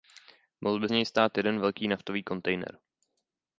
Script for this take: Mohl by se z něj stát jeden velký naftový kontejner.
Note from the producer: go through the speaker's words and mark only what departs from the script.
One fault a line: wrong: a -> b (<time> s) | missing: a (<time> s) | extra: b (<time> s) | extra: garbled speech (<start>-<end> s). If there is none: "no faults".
missing: se (0.9 s)